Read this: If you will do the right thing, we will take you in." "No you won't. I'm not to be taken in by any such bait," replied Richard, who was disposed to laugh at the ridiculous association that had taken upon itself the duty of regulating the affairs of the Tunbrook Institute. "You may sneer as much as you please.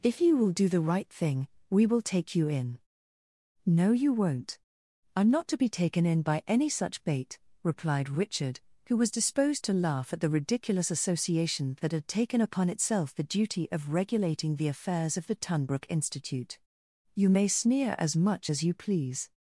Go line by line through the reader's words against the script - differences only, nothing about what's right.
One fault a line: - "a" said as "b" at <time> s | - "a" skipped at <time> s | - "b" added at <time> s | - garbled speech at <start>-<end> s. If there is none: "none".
none